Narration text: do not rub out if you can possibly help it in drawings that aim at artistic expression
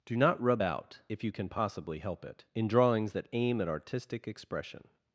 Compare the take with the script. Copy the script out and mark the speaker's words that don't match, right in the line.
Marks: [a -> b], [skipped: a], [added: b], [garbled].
do not rub out if you can possibly help it in drawings that aim at artistic expression